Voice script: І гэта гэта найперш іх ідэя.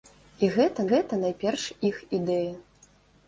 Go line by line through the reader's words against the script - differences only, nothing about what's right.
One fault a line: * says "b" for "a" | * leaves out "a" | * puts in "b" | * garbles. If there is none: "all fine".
all fine